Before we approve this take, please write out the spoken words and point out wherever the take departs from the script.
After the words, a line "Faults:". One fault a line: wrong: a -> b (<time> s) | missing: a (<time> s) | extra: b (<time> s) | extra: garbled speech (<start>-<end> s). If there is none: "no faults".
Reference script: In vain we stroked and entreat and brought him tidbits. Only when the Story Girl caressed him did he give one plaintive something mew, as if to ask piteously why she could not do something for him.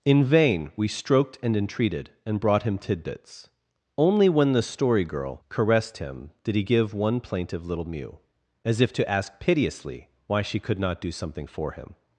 In vain we stroked and entreated and brought him tidbits. Only when the Story Girl caressed him did he give one plaintive little mew, as if to ask piteously why she could not do something for him.
Faults:
wrong: entreat -> entreated (1.6 s)
wrong: something -> little (7.7 s)